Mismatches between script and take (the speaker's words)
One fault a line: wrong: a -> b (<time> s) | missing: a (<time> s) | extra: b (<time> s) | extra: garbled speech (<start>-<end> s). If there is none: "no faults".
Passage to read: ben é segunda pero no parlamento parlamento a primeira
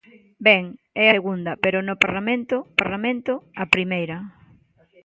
no faults